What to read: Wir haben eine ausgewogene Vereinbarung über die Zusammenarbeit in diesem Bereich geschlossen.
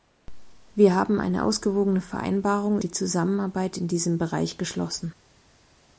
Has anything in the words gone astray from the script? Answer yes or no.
yes